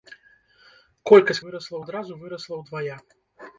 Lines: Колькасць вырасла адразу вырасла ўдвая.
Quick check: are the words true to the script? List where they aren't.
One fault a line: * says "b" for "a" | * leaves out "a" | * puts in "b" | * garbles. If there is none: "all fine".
all fine